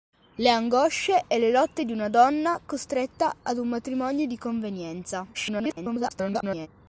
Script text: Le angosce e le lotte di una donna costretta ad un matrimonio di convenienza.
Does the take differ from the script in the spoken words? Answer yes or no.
yes